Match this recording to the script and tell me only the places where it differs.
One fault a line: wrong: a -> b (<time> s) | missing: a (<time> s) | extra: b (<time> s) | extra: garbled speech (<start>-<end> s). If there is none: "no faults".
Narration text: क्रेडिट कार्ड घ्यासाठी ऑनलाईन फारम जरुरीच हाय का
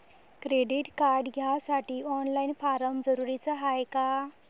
no faults